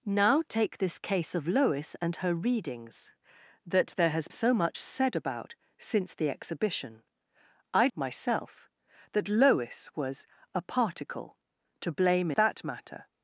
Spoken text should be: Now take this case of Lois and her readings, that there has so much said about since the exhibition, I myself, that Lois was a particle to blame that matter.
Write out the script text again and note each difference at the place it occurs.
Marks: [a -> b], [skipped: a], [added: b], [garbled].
Now take this case of Lois and her readings, that there has so much said about since the exhibition, I myself, that Lois was a particle to blame that matter.